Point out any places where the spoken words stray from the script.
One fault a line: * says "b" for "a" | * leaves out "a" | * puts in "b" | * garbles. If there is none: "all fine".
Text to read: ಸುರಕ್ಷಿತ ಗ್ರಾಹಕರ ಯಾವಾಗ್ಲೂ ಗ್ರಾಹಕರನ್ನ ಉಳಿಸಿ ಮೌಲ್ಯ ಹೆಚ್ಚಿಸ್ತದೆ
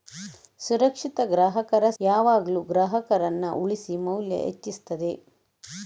all fine